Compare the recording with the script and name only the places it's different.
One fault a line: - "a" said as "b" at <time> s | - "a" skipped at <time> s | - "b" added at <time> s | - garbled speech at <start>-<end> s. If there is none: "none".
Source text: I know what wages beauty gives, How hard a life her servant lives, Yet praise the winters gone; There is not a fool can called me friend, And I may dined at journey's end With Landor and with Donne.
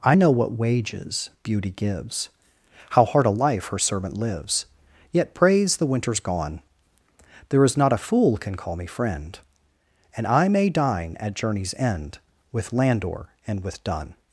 - "called" said as "call" at 8.5 s
- "dined" said as "dine" at 10.7 s